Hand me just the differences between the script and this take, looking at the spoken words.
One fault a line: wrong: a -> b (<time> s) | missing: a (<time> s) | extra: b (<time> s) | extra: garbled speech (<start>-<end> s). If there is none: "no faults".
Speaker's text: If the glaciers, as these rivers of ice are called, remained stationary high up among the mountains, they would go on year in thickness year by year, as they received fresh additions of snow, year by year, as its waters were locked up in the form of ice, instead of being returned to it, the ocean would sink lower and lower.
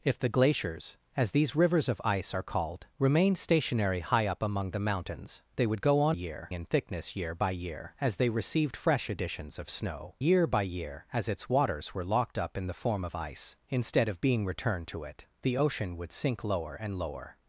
no faults